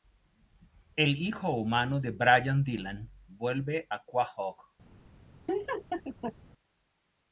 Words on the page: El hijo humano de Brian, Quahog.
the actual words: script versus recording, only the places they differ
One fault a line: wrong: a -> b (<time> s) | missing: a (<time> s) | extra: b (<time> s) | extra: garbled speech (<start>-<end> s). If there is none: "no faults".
extra: Dylan vuelve a (2.6 s)